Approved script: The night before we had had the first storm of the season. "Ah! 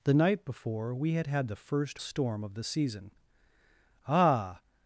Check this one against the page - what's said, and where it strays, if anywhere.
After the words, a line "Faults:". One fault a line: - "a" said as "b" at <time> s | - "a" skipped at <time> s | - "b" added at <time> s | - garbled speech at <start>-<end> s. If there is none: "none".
The night before we had had the first storm of the season. "Ah!
Faults:
none